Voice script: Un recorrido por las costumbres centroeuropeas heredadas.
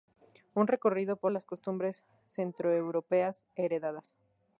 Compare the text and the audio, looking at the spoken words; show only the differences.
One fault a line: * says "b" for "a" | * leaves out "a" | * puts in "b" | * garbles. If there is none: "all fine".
all fine